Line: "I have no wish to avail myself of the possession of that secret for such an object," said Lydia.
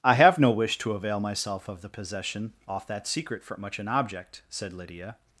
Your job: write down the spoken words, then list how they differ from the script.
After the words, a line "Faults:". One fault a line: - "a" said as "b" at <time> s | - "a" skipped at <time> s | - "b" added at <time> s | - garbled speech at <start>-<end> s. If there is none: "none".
"I have no wish to avail myself of the possession off that secret for much an object," said Lydia.
Faults:
- "of" said as "off" at 2.7 s
- "such" said as "much" at 3.6 s